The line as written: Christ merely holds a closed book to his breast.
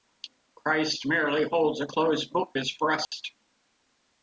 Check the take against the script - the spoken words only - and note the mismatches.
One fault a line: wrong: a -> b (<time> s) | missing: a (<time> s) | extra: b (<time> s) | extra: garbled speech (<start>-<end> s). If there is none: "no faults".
missing: to (2.6 s)